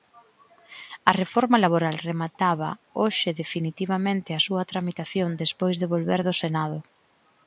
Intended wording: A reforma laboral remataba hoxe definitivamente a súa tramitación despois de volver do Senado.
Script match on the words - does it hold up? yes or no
yes